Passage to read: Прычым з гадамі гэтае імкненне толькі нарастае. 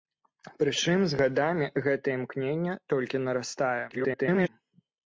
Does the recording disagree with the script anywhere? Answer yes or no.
yes